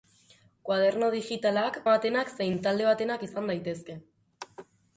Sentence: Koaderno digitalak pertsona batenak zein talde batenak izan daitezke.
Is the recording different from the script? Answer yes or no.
yes